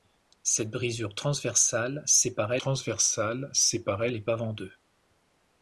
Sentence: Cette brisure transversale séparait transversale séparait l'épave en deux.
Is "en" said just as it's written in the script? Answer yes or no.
yes